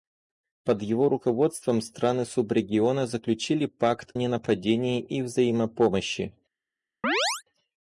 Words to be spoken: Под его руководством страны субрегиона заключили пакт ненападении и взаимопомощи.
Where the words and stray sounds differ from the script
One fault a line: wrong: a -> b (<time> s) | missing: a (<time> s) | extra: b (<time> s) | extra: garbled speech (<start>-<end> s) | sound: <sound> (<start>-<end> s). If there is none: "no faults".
sound: chirp (7.0-7.4 s)